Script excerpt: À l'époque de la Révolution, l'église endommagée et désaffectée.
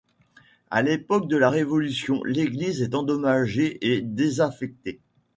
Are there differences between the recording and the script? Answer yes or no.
yes